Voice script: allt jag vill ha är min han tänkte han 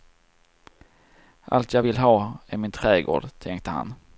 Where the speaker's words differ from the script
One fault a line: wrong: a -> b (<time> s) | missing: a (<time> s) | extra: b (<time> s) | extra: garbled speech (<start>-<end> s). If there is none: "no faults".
wrong: han -> trädgård (2.7 s)